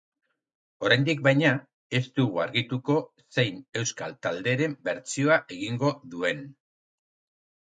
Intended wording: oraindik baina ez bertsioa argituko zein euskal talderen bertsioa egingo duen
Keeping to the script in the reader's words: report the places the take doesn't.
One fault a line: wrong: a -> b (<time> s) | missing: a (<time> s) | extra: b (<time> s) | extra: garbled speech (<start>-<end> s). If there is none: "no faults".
wrong: bertsioa -> dugu (2.2 s)